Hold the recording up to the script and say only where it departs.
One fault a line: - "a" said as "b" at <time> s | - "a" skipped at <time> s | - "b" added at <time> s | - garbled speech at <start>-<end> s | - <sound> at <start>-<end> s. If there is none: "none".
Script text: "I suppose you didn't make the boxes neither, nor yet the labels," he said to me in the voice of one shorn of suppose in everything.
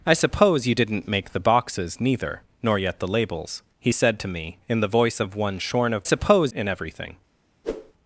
- whoosh at 7.6-7.9 s